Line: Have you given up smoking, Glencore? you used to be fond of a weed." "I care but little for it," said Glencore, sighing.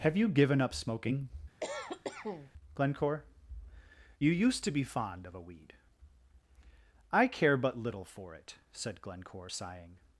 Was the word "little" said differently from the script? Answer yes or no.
no